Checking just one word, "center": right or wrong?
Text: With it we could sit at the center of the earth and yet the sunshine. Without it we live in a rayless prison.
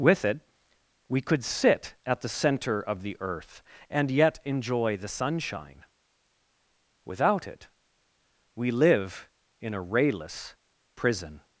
right